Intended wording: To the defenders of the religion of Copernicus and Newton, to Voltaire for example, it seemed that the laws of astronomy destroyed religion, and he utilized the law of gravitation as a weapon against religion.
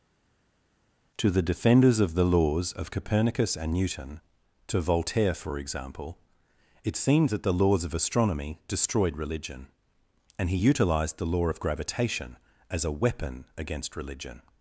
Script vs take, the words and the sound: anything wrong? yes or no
yes